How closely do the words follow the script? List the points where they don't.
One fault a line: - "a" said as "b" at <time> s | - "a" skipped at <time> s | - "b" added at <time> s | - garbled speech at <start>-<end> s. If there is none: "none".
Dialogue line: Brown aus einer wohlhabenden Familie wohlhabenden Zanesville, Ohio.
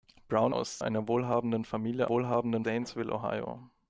none